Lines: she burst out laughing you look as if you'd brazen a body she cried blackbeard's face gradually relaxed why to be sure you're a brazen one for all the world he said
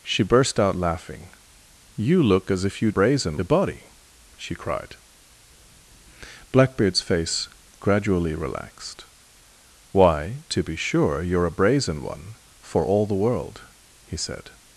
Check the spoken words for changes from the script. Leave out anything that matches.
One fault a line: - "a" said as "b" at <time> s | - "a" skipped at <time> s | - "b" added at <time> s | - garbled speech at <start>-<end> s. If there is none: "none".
none